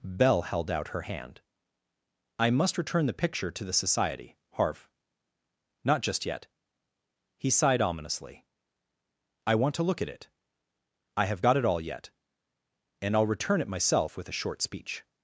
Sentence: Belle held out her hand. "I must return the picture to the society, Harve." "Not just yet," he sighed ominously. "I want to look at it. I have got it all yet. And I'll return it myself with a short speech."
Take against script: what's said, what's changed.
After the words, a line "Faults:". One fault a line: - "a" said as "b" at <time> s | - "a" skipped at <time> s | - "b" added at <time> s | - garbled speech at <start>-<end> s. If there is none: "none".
Belle held out her hand. "I must return the picture to the society, Harve." "Not just yet," he sighed ominously. "I want to look at it. I have got it all yet. And I'll return it myself with a short speech."
Faults:
none